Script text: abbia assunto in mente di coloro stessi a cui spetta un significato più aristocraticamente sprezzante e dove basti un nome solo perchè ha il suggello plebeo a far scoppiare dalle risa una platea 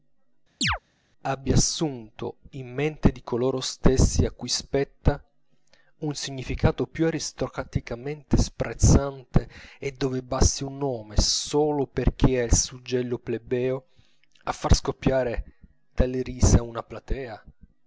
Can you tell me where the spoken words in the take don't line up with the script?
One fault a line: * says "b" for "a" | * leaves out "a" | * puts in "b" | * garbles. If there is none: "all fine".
all fine